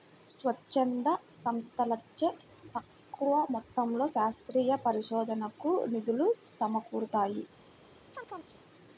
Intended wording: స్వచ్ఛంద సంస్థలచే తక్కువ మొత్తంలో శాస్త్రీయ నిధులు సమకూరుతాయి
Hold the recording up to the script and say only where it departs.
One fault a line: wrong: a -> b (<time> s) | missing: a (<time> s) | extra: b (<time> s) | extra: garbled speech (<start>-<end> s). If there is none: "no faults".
extra: పరిశోధనకు (4.9 s)